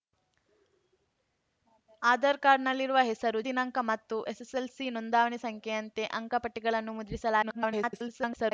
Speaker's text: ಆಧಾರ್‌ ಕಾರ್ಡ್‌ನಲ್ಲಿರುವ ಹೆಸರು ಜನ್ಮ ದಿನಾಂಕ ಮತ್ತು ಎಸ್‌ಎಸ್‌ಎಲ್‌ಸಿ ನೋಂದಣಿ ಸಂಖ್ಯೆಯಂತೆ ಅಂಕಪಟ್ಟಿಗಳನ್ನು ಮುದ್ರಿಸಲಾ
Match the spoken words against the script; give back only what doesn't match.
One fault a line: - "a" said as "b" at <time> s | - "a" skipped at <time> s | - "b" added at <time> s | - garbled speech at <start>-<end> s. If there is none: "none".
- "ಜನ್ಮ" skipped at 3.4 s
- garbled speech at 7.4-8.5 s